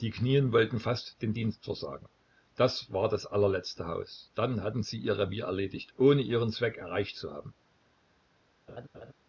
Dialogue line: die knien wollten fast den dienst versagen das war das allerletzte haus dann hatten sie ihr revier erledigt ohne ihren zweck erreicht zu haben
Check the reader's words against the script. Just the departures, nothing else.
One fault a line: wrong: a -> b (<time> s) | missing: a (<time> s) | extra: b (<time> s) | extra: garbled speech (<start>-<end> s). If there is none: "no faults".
no faults